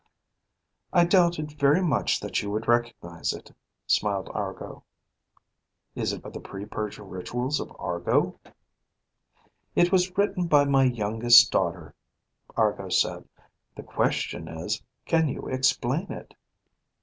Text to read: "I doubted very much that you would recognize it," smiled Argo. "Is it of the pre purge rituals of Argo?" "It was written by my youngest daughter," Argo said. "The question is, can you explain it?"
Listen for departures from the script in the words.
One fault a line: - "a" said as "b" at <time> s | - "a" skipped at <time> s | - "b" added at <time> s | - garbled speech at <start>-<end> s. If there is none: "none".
none